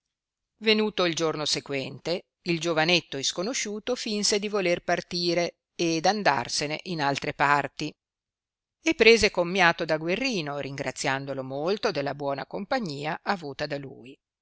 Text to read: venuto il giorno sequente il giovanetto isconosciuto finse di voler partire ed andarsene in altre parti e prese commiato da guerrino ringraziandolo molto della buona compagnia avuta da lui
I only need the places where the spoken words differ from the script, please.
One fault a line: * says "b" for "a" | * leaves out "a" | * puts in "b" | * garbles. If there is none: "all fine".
all fine